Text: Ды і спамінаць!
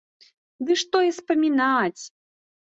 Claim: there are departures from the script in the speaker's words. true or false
true